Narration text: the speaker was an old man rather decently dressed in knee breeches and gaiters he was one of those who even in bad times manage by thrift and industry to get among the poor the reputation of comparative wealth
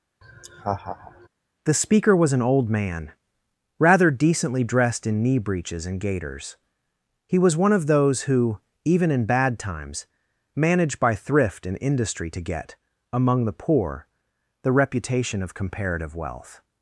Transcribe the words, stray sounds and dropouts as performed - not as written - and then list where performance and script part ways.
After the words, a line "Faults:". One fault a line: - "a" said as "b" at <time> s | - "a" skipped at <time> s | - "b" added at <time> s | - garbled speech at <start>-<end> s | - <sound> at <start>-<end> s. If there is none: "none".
the speaker was an old man rather decently dressed in knee breeches and gaiters he was one of those who even in bad times manage by thrift and industry to get among the poor the reputation of comparative wealth
Faults:
- laugh at 0.2-1.3 s